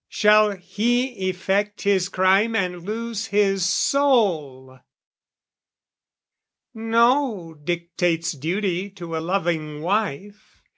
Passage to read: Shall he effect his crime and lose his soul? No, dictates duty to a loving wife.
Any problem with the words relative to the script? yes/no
no